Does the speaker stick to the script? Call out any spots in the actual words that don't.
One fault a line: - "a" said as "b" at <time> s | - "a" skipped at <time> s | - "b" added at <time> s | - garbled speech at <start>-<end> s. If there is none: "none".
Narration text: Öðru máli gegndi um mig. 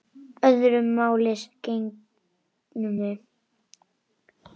none